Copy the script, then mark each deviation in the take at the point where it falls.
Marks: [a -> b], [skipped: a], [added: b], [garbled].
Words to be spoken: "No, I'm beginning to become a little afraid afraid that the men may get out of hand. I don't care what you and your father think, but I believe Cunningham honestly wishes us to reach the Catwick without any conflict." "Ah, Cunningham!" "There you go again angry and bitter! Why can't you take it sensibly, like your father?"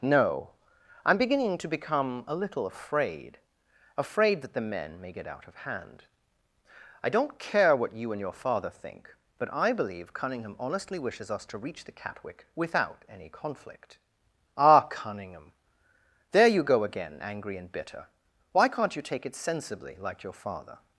"No, I'm beginning to become a little afraid afraid that the men may get out of hand. I don't care what you and your father think, but I believe Cunningham honestly wishes us to reach the Catwick without any conflict." "Ah, Cunningham!" "There you go again angry and bitter! Why can't you take it sensibly, like your father?"